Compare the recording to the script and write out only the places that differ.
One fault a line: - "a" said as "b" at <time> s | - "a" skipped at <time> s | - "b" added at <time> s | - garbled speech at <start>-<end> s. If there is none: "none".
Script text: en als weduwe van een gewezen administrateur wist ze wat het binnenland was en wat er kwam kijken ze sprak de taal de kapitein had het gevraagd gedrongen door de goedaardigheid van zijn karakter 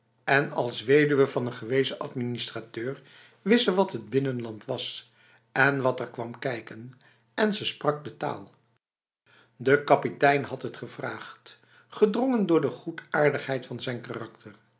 - "en" added at 7.3 s